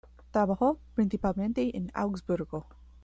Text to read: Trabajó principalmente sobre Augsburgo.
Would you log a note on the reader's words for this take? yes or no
yes